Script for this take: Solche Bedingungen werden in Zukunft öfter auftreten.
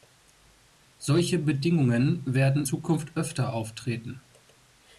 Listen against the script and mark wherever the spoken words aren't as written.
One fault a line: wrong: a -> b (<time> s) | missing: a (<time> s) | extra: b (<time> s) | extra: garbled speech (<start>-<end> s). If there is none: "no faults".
missing: in (2.7 s)